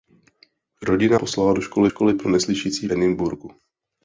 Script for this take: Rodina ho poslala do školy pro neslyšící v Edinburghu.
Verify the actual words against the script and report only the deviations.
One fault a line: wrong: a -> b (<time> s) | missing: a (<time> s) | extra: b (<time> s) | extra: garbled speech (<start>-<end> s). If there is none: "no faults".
missing: ho (1.2 s)
extra: školy (1.9 s)
missing: v (2.9 s)